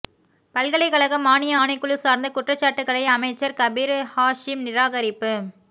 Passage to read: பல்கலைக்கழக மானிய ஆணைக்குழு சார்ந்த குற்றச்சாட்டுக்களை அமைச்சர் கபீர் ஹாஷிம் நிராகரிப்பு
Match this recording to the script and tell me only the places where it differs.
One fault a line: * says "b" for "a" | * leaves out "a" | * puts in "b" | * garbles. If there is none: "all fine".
all fine